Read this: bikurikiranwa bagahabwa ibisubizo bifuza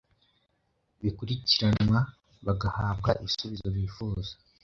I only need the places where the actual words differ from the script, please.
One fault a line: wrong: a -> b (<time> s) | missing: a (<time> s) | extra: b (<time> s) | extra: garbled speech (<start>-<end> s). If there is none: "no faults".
no faults